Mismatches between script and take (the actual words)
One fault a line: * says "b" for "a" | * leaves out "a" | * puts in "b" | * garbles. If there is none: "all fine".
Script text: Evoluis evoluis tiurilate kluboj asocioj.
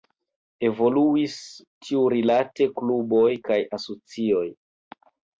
* leaves out "evoluis"
* puts in "kaj"